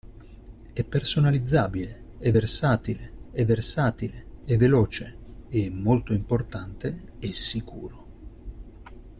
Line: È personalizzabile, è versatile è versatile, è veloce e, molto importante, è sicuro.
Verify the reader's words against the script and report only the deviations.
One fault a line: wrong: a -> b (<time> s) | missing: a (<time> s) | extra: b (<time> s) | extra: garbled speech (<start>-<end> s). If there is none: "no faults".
no faults